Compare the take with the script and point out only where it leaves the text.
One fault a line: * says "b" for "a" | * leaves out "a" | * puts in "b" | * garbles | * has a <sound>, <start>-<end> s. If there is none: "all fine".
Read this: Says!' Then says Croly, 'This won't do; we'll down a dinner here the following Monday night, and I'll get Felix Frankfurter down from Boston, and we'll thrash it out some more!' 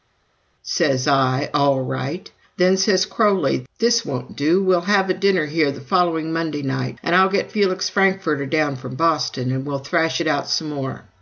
* puts in "I All right"
* says "have" for "down"